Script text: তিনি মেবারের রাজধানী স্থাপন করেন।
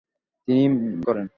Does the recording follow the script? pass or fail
fail